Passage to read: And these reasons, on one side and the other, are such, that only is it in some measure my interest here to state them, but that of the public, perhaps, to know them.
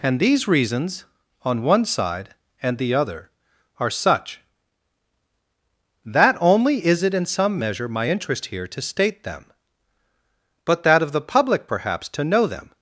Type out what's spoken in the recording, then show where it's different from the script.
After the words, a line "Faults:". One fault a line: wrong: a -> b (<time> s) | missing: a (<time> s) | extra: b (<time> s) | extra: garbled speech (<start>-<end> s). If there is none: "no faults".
And these reasons, on one side and the other, are such, that only is it in some measure my interest here to state them, but that of the public, perhaps, to know them.
Faults:
no faults